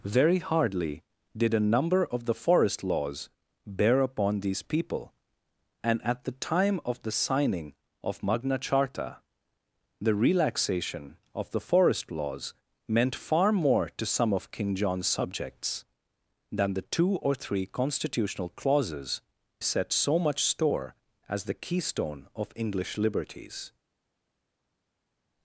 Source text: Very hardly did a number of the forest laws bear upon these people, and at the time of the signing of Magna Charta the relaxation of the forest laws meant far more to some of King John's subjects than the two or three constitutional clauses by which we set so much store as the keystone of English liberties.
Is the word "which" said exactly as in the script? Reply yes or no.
no